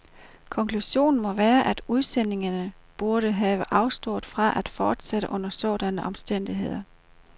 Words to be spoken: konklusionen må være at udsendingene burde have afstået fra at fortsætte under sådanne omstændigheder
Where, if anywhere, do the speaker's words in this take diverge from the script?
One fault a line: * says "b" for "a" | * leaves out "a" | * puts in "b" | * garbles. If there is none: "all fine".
all fine